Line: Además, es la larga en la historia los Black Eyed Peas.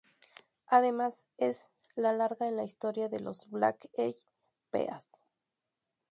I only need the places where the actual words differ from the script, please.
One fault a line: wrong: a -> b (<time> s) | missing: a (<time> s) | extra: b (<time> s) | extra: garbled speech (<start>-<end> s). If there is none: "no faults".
extra: de (3.1 s)